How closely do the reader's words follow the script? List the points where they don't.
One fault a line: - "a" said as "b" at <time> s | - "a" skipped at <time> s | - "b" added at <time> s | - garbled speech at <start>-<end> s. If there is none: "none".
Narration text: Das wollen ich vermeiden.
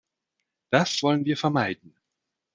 - "ich" said as "wir" at 1.3 s